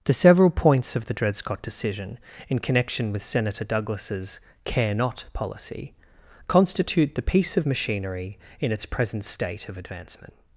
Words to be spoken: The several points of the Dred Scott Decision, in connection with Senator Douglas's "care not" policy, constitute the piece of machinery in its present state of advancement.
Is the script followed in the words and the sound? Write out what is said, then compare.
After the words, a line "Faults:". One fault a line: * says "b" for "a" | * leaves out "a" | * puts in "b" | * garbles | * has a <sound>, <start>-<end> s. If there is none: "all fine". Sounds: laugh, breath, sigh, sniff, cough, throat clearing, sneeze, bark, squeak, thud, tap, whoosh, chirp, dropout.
The several points of the Dred Scott Decision, in connection with Senator Douglas's "care not" policy, constitute the piece of machinery in its present state of advancement.
Faults:
all fine